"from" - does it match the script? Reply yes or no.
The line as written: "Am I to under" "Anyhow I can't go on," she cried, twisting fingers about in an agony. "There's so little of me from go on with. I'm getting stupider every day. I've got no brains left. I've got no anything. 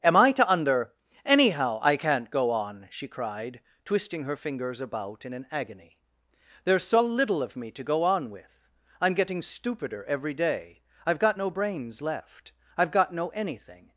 no